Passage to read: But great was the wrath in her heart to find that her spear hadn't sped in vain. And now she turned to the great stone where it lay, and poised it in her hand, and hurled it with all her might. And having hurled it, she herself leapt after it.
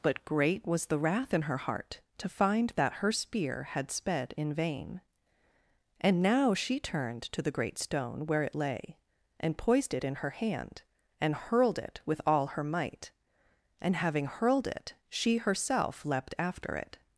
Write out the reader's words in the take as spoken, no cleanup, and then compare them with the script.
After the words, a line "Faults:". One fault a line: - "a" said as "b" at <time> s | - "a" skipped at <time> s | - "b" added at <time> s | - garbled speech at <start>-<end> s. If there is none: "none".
But great was the wrath in her heart to find that her spear had sped in vain. And now she turned to the great stone where it lay, and poised it in her hand, and hurled it with all her might. And having hurled it, she herself leapt after it.
Faults:
- "hadn't" said as "had" at 3.6 s